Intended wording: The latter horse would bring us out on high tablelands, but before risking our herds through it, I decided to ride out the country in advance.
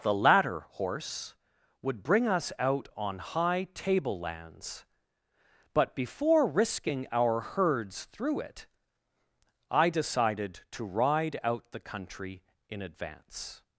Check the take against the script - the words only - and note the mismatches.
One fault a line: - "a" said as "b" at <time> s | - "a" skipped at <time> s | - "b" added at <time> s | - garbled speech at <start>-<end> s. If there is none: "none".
none